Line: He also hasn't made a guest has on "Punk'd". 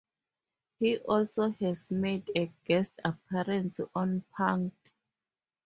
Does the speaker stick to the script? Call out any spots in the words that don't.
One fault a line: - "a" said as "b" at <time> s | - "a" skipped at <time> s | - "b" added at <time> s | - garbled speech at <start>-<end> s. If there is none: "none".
- "hasn't" said as "has" at 1.5 s
- "has" said as "appearance" at 3.0 s